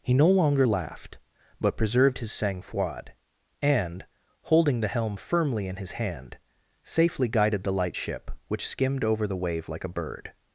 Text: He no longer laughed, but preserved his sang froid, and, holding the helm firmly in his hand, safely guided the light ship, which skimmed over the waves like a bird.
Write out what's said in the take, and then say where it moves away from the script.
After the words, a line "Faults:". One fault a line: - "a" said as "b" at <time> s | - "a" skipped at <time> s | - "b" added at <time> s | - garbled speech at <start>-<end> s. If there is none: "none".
He no longer laughed, but preserved his sang froid, and, holding the helm firmly in his hand, safely guided the light ship, which skimmed over the wave like a bird.
Faults:
- "waves" said as "wave" at 9.4 s